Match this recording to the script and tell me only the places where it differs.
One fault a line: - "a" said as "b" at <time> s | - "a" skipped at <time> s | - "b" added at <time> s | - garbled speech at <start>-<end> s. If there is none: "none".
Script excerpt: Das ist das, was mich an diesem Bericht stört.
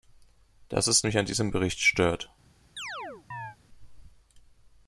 - "das was" skipped at 1.1 s